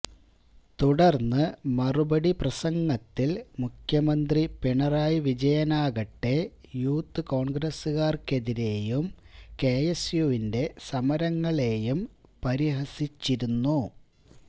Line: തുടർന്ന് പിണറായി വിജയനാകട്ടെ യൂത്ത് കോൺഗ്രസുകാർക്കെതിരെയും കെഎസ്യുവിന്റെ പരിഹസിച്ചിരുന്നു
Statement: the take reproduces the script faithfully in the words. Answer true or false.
false